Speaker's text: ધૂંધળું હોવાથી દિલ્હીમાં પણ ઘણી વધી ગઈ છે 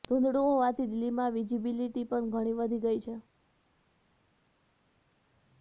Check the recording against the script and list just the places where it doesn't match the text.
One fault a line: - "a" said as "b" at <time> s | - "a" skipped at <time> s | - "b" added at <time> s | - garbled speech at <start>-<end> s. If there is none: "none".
- "વિજિબિલિટી" added at 1.4 s